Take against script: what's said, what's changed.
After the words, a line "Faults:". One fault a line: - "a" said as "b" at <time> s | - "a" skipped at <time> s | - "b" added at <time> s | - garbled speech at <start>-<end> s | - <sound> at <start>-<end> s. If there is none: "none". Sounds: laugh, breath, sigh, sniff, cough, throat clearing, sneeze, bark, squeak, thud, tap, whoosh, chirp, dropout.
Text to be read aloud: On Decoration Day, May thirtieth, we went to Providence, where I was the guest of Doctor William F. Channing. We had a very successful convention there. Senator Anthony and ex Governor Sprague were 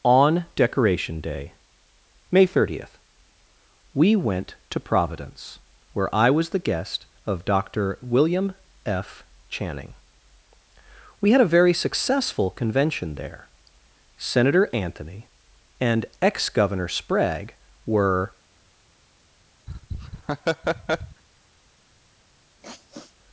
On Decoration Day, May thirtieth, we went to Providence, where I was the guest of Doctor William F. Channing. We had a very successful convention there. Senator Anthony and ex Governor Sprague were
Faults:
- laugh at 19.7-21.2 s
- sniff at 22.6-23.1 s